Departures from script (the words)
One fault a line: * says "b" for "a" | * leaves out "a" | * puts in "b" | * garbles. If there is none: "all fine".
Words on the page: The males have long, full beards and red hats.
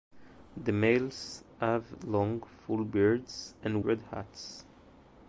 all fine